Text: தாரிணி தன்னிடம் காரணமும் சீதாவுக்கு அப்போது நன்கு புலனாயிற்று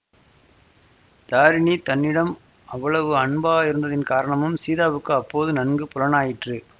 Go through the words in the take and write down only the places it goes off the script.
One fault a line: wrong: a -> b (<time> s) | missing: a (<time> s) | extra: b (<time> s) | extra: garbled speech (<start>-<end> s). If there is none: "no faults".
extra: அவ்வளவு அன்பாயிருந்ததின் (2.7 s)